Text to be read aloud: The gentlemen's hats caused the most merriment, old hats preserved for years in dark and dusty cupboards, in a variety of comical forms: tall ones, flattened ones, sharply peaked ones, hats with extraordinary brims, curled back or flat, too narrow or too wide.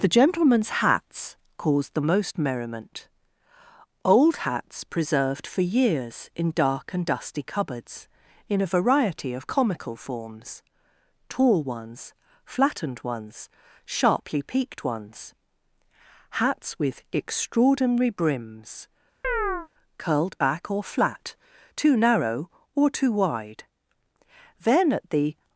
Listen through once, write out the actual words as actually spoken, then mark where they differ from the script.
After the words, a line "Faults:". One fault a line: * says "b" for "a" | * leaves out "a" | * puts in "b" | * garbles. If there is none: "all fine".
The gentlemen's hats caused the most merriment, old hats preserved for years in dark and dusty cupboards, in a variety of comical forms: tall ones, flattened ones, sharply peaked ones, hats with extraordinary brims, curled back or flat, too narrow or too wide. Then at the
Faults:
* puts in "Then at the"